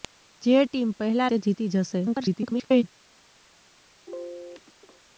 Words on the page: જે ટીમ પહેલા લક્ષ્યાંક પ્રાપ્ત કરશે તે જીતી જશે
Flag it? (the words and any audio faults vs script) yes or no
yes